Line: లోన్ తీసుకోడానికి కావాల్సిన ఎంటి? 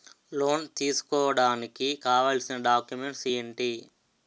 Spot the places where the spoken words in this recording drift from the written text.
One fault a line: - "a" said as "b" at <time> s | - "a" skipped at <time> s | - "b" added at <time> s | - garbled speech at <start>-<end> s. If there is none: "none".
- "డాక్యుమెంట్స్" added at 2.6 s